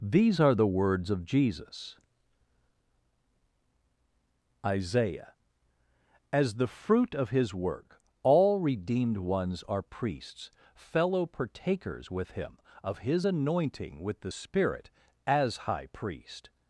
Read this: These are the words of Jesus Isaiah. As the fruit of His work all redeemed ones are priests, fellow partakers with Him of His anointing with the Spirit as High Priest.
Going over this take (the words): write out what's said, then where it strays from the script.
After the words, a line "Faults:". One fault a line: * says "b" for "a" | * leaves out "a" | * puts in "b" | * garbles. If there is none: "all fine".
These are the words of Jesus Isaiah. As the fruit of His work all redeemed ones are priests, fellow partakers with Him of His anointing with the Spirit as High Priest.
Faults:
all fine